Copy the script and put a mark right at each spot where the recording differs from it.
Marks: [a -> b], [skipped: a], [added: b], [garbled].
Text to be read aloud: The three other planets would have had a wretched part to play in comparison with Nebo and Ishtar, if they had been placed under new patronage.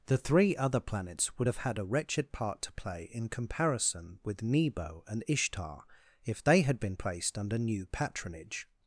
The three other planets would have had a wretched part to play in comparison with Nebo and Ishtar, if they had been placed under new patronage.